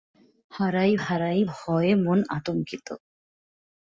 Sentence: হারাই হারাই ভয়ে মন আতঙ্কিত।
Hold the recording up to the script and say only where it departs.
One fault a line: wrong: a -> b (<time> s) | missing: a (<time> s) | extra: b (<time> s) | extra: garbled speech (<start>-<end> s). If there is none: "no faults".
no faults